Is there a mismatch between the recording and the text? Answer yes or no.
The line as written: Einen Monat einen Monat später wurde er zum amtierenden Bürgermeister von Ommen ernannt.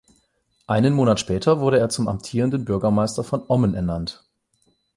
yes